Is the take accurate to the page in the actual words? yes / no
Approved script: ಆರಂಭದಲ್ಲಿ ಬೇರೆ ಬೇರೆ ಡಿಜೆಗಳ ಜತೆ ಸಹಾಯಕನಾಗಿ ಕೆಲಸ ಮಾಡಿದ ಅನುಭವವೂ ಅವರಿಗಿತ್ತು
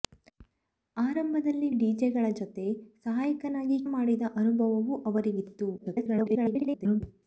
no